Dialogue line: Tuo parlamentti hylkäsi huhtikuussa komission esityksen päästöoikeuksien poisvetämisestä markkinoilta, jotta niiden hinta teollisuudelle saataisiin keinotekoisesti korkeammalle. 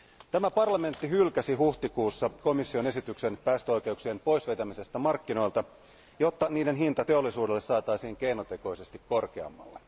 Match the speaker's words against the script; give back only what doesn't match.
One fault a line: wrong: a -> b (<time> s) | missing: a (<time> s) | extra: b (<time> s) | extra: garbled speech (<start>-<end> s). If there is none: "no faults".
wrong: Tuo -> Tämä (0.3 s)